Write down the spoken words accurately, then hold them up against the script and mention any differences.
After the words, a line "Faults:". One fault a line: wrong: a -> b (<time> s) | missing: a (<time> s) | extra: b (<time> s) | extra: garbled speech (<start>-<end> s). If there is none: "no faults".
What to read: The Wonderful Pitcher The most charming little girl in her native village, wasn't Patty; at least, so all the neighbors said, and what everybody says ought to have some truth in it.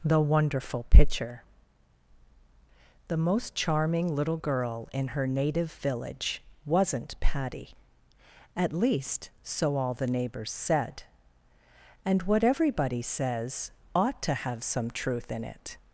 The Wonderful Pitcher The most charming little girl in her native village, wasn't Patty; at least, so all the neighbors said, and what everybody says ought to have some truth in it.
Faults:
no faults